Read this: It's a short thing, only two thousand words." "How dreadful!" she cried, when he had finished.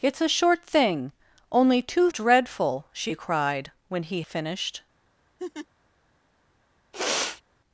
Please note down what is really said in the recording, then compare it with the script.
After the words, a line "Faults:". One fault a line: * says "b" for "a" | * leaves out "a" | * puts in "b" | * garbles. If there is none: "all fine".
It's a short thing, only two dreadful!" she cried, when he finished.
Faults:
* leaves out "thousand words How"
* leaves out "had"